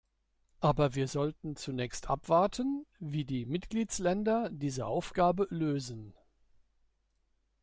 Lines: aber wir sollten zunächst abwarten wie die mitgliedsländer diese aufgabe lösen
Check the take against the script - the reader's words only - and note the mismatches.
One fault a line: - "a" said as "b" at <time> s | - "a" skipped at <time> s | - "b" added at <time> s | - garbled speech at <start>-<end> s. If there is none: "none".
none